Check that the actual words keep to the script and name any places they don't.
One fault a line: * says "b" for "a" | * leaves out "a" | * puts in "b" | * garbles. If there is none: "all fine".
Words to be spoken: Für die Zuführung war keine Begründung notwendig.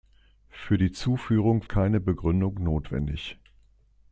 * leaves out "war"